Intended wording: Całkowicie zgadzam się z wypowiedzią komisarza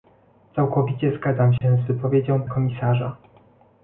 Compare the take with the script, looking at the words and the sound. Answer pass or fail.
fail